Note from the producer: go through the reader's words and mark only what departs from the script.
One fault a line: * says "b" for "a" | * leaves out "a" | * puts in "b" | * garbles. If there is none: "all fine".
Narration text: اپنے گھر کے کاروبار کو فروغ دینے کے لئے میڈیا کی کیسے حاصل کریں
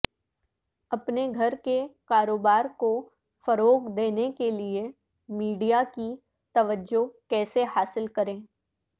* puts in "توجہ"